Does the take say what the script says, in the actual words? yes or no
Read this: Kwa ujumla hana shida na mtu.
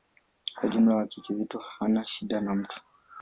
no